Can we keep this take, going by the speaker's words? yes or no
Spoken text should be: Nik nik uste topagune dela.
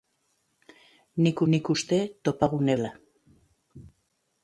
yes